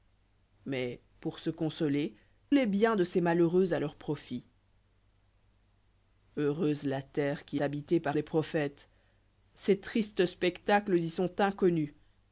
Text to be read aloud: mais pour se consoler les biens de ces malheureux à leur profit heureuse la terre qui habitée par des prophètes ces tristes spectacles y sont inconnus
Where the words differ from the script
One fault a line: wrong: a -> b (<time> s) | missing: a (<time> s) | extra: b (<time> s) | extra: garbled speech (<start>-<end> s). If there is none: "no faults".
no faults